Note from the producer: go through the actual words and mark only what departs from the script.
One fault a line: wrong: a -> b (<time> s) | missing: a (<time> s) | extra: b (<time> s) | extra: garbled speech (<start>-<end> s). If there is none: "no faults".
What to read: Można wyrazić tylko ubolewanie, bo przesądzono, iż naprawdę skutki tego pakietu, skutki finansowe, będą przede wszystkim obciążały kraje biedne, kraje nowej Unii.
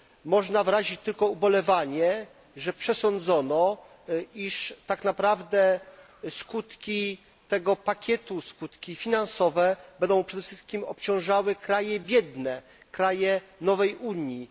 wrong: bo -> że (2.5 s)
extra: tak (4.9 s)